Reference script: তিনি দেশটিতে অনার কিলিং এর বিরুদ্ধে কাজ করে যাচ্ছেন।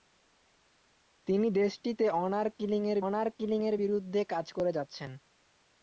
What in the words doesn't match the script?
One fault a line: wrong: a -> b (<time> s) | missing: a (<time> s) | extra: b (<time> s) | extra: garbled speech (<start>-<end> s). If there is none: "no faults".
extra: অনার কিলিং এর (3.0 s)